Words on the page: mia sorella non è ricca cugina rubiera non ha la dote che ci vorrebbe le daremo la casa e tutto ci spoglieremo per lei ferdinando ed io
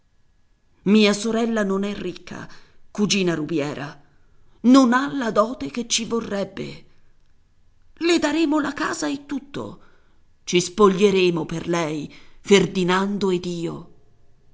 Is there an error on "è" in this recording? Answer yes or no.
no